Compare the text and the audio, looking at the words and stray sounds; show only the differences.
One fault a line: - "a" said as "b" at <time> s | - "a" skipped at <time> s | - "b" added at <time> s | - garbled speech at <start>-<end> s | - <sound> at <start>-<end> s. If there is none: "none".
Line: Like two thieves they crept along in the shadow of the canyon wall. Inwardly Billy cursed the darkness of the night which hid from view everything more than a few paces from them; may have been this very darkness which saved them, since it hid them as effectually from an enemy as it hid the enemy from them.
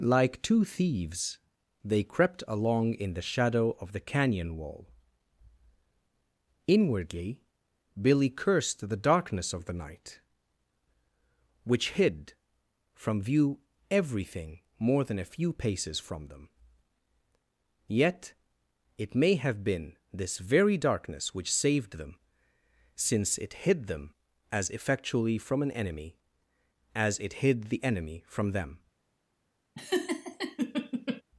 - "yet it" added at 17.9 s
- laugh at 29.7-31.2 s